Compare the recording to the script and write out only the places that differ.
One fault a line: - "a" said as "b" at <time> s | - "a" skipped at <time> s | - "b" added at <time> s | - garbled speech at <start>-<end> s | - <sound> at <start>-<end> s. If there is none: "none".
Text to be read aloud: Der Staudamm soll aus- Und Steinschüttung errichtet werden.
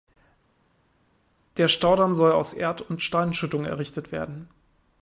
- "Erd" added at 2.5 s